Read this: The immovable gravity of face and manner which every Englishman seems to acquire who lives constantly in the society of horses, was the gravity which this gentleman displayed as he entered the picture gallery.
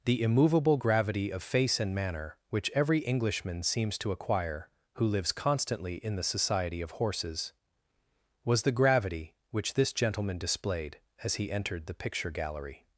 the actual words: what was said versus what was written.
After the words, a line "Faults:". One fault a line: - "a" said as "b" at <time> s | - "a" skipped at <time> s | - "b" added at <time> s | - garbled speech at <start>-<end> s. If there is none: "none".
The immovable gravity of face and manner which every Englishman seems to acquire who lives constantly in the society of horses, was the gravity which this gentleman displayed as he entered the picture gallery.
Faults:
none